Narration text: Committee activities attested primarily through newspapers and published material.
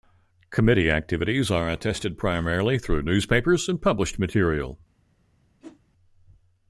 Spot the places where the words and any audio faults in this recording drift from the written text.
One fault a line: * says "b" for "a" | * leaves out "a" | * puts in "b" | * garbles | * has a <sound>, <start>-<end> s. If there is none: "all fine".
* puts in "are"
* has a whoosh, 5.6-5.8 s